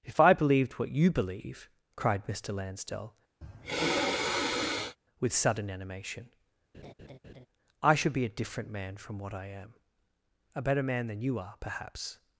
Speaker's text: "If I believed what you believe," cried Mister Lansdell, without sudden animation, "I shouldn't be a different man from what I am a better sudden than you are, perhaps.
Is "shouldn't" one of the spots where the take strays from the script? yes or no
yes